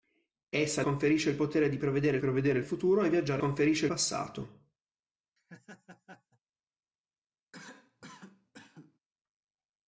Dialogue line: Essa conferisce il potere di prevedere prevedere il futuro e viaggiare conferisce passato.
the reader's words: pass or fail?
pass